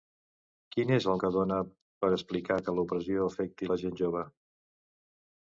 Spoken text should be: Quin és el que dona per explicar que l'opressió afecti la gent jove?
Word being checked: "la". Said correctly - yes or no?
yes